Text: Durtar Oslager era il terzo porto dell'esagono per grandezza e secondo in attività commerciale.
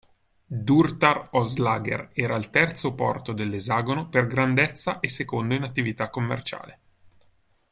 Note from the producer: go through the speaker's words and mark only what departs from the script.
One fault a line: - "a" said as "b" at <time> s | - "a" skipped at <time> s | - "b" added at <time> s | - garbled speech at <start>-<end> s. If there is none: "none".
none